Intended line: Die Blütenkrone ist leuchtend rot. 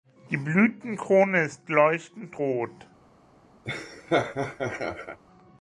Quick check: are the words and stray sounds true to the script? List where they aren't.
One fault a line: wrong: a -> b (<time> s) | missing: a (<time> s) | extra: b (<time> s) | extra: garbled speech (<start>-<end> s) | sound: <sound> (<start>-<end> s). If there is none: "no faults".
sound: laugh (3.6-5.2 s)